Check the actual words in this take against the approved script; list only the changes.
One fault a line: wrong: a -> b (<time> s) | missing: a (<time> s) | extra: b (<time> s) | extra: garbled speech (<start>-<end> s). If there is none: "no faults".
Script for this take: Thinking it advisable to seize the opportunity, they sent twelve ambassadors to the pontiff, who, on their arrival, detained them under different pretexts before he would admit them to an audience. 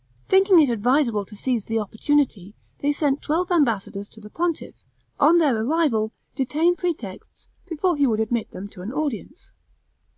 missing: who (4.7 s)
missing: them under different (6.8 s)